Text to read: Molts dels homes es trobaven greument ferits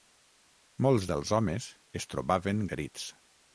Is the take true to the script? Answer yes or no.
no